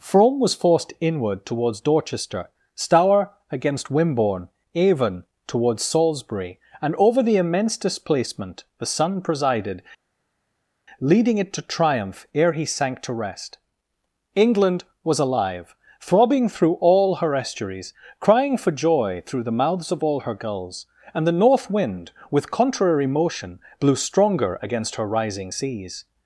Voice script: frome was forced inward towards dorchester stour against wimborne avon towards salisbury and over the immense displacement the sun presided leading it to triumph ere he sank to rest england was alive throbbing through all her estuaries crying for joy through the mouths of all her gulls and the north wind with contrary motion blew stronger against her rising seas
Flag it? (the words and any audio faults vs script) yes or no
no